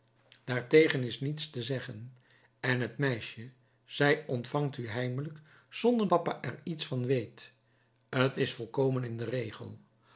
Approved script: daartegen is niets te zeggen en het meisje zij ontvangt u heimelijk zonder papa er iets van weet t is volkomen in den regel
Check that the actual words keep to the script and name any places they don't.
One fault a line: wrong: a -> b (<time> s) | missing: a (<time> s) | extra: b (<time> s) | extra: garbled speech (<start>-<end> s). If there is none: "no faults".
no faults